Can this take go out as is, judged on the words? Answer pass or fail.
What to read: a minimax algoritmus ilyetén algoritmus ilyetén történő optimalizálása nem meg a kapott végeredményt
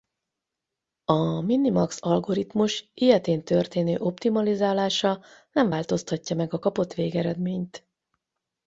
fail